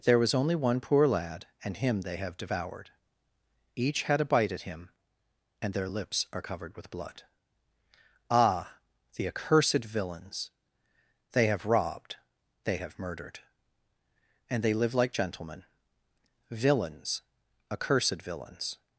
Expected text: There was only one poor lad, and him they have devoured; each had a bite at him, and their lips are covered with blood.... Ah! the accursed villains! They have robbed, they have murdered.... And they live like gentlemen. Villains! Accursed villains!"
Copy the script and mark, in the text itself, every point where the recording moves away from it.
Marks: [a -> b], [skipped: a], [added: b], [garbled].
There was only one poor lad, and him they have devoured; each had a bite at him, and their lips are covered with blood.... Ah! the accursed villains! They have robbed, they have murdered.... And they live like gentlemen. Villains! Accursed villains!"